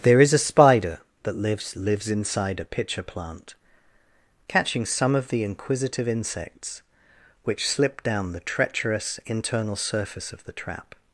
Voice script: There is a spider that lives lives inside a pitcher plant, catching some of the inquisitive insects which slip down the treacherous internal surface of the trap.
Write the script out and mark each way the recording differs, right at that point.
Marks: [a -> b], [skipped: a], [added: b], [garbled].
There is a spider that lives lives inside a pitcher plant, catching some of the inquisitive insects which slip down the treacherous internal surface of the trap.